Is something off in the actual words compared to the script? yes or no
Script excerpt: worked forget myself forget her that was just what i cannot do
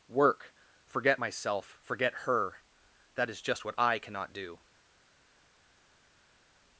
yes